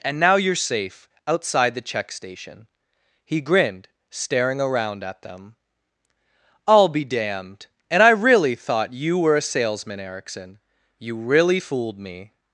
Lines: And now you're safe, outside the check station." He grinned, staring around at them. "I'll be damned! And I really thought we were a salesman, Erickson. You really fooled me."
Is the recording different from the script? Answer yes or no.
yes